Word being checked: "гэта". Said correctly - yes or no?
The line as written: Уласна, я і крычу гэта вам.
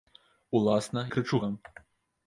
no